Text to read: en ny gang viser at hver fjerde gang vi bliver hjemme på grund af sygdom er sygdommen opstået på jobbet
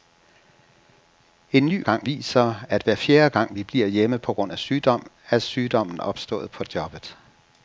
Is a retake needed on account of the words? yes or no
no